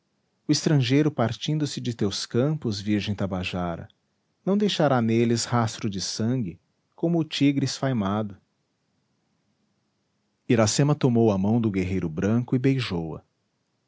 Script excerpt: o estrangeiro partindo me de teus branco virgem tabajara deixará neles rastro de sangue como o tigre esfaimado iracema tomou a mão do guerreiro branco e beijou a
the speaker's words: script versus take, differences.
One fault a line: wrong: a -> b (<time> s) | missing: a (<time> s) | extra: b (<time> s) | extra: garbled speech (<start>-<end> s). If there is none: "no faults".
wrong: me -> se (1.7 s)
wrong: branco -> campos (2.2 s)
extra: não (4.4 s)